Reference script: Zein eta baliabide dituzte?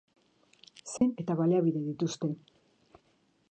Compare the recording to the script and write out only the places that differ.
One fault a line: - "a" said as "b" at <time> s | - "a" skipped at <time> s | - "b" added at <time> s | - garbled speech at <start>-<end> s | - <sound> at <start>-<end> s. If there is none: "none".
- dropout at 1.0-1.0 s